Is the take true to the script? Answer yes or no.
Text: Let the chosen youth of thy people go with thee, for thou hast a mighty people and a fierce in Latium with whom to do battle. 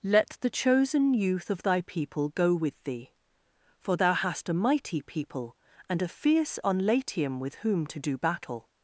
no